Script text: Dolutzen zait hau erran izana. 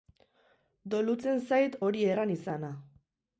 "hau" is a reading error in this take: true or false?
true